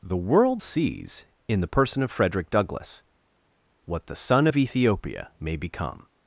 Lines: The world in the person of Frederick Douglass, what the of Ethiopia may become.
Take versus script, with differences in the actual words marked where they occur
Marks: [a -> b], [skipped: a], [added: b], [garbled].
The world [added: sees] in the person of Frederick Douglass, what the [added: son] of Ethiopia may become.